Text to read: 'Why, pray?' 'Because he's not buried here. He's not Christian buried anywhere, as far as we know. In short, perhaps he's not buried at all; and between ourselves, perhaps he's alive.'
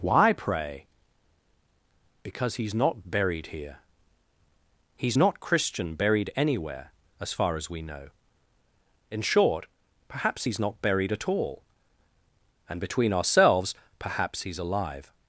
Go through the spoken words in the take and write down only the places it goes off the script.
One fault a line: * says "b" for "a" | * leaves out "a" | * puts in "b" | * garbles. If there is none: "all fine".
all fine